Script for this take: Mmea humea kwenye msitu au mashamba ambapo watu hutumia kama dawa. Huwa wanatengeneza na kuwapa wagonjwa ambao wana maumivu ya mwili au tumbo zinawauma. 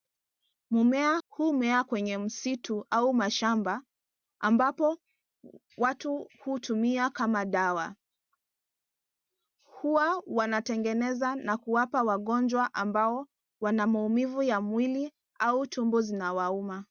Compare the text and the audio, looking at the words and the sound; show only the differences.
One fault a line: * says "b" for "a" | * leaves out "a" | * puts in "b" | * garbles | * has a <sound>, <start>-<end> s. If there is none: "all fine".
all fine